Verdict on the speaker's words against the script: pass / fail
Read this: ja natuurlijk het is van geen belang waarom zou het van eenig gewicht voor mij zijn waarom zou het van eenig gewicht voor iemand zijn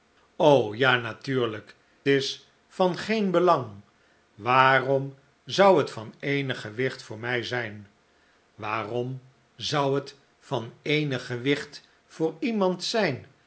fail